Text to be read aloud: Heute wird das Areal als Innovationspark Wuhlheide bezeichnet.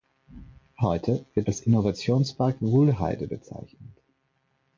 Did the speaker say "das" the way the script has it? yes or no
no